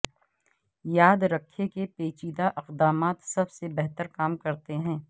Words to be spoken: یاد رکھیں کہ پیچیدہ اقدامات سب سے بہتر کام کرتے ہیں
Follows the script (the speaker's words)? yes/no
yes